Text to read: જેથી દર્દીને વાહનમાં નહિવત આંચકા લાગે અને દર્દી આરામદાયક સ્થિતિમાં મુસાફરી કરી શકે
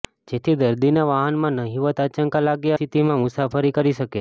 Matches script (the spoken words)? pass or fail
fail